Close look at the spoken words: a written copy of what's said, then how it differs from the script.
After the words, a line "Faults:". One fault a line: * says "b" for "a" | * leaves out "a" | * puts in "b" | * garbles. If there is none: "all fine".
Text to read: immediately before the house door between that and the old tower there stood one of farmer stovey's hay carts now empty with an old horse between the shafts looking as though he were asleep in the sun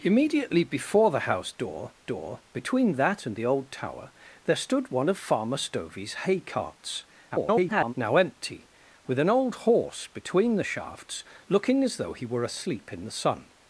immediately before the house door door between that and the old tower there stood one of farmer stovey's hay carts [garbled] now empty with an old horse between the shafts looking as though he were asleep in the sun
Faults:
* puts in "door"
* garbles